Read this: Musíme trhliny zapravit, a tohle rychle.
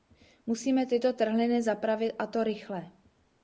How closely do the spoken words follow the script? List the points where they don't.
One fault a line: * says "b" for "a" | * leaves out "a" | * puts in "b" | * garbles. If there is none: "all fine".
* puts in "tyto"
* says "to" for "tohle"